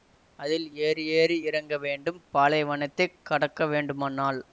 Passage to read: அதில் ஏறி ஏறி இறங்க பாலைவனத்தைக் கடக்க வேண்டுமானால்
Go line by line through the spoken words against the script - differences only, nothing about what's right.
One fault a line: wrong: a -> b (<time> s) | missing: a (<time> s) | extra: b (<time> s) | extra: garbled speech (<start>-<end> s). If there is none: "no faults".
extra: வேண்டும் (1.8 s)